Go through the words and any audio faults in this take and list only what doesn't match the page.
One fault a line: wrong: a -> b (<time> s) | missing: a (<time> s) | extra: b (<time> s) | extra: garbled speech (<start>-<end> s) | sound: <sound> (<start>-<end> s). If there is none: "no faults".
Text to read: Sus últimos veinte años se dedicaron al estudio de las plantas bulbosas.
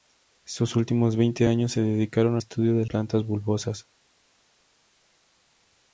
missing: al (2.4 s)
missing: las (2.9 s)